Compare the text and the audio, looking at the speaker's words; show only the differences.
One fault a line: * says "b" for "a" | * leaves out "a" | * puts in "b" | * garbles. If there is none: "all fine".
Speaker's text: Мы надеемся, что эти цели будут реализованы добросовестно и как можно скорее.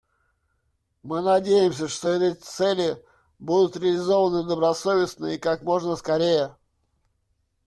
all fine